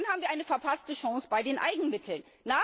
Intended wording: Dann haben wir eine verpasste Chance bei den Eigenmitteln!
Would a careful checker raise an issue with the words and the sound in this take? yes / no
no